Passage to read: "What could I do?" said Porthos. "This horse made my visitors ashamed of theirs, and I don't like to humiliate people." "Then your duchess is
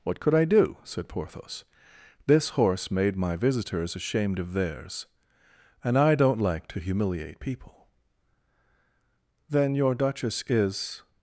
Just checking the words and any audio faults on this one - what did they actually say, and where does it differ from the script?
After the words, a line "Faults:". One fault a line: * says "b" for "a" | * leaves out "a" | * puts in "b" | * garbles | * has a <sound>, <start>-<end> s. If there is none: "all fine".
"What could I do?" said Porthos. "This horse made my visitors ashamed of theirs, and I don't like to humiliate people." "Then your duchess is
Faults:
all fine